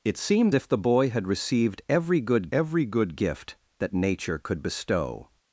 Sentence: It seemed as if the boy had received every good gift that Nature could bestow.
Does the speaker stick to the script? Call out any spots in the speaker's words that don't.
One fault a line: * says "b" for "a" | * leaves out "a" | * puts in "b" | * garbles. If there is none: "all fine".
* leaves out "as"
* puts in "every good"